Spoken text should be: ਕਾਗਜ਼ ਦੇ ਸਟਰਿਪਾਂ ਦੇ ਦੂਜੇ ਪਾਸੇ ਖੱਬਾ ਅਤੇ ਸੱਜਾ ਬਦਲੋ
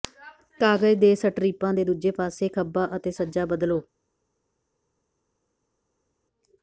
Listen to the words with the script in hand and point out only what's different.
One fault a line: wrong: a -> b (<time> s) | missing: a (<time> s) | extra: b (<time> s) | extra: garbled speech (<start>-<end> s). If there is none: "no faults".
no faults